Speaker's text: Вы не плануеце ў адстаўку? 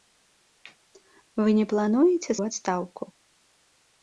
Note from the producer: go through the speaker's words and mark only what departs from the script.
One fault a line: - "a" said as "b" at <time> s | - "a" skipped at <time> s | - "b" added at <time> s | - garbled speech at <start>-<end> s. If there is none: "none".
none